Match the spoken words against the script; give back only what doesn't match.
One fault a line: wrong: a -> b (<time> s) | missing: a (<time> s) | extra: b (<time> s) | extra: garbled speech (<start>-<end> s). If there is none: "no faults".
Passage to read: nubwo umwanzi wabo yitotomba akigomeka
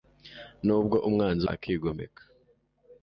missing: wabo yitotomba (1.4 s)